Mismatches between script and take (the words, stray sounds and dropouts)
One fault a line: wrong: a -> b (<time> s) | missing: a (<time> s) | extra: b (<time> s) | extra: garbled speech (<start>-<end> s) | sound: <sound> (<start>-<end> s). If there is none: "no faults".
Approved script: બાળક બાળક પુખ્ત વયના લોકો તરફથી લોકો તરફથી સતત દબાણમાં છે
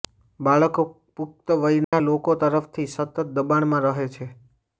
missing: બાળક (0.8 s)
sound: dropout (1.8-1.9 s)
missing: લોકો તરફથી (2.9 s)
extra: રહે (3.9 s)